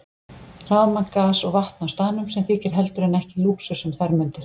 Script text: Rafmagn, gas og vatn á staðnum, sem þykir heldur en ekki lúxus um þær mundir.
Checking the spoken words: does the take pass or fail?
pass